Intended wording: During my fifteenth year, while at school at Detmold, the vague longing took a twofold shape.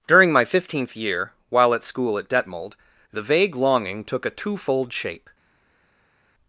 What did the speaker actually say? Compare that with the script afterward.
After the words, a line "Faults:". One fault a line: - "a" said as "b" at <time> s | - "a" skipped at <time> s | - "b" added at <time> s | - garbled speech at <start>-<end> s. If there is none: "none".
During my fifteenth year, while at school at Detmold, the vague longing took a twofold shape.
Faults:
none